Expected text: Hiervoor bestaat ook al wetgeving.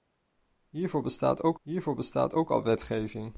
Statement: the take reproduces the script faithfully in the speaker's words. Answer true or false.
false